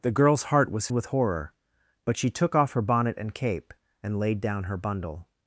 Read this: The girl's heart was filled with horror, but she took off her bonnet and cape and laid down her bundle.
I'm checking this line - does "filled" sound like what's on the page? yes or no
no